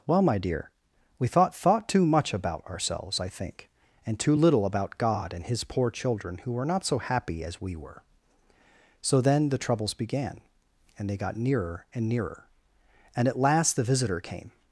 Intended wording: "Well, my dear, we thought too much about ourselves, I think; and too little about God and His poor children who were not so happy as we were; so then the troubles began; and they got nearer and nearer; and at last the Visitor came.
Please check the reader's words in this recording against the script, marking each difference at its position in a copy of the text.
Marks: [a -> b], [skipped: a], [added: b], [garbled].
"Well, my dear, we thought [added: thought] too much about ourselves, I think; and too little about God and His poor children who were not so happy as we were; so then the troubles began; and they got nearer and nearer; and at last the Visitor came.